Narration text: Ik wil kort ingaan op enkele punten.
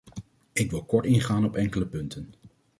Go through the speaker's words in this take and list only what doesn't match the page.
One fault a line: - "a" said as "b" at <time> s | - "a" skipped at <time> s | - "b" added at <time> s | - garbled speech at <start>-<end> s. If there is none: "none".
none